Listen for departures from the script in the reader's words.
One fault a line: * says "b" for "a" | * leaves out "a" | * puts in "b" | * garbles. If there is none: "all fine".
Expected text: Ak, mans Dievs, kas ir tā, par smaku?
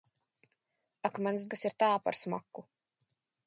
* leaves out "Dievs"